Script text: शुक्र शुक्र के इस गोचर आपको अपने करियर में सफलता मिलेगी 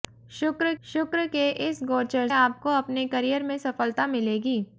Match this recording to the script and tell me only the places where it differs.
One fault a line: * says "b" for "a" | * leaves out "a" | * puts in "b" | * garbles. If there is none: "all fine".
all fine